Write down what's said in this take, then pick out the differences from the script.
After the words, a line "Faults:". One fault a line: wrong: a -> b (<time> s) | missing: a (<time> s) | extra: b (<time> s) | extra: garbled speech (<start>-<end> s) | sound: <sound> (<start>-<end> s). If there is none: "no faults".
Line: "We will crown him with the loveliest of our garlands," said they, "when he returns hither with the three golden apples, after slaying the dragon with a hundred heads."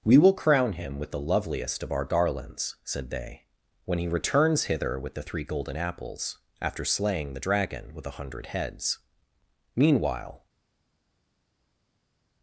"We will crown him with the loveliest of our garlands," said they, "when he returns hither with the three golden apples, after slaying the dragon with a hundred heads." Meanwhile
Faults:
extra: Meanwhile (9.8 s)